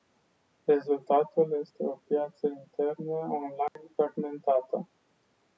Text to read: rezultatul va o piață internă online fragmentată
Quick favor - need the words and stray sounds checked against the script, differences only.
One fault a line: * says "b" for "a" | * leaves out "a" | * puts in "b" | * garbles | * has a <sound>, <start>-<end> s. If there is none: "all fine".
* says "este" for "va"
* has a dropout, 3.7-3.8 s